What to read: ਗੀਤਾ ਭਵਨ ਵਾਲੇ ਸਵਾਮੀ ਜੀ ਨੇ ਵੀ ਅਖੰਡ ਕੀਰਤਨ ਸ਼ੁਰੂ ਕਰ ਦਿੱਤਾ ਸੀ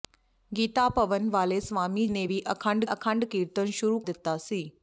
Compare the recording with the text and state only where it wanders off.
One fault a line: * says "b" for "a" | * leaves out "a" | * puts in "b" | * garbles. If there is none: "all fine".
* leaves out "ਜੀ"
* puts in "ਅਖੰਡ"
* leaves out "ਕਰ"